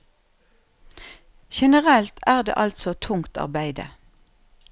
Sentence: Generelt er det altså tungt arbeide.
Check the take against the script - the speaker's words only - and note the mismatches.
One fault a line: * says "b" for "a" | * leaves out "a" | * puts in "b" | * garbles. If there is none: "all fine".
all fine